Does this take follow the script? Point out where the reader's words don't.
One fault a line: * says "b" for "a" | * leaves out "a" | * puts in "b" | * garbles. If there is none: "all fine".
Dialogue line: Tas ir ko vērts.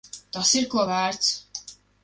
all fine